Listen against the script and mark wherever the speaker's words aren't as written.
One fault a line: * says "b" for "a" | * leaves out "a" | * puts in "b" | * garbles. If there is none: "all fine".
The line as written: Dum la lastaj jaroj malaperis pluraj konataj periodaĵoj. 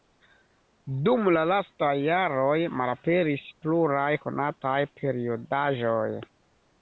all fine